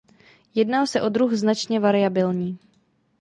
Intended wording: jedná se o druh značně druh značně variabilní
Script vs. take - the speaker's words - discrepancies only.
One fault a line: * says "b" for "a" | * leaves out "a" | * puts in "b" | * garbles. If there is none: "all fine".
* leaves out "druh značně"